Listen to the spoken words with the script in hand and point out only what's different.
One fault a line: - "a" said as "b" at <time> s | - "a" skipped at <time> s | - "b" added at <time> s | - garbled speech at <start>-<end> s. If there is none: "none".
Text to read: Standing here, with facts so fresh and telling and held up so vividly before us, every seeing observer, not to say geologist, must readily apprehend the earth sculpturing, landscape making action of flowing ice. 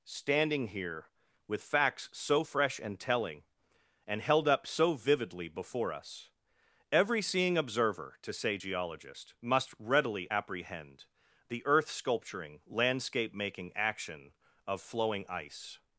- "not" skipped at 8.2 s